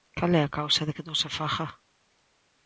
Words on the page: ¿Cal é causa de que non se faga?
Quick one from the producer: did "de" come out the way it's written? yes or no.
yes